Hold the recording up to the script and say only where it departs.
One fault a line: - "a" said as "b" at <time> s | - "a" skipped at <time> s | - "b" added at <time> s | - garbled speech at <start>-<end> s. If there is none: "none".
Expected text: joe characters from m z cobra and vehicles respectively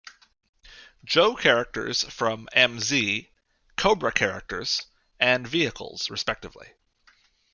- "characters" added at 4.1 s